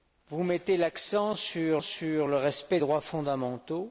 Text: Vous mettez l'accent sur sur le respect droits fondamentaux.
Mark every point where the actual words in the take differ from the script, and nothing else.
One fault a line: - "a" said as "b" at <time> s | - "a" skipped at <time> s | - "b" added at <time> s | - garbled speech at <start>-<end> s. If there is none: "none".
none